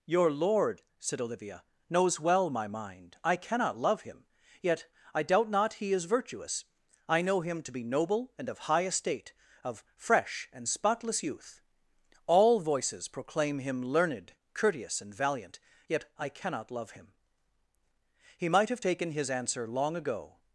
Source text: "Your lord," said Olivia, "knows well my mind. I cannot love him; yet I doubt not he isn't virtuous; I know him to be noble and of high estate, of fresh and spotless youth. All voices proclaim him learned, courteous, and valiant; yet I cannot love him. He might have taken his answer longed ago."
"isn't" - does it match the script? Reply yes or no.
no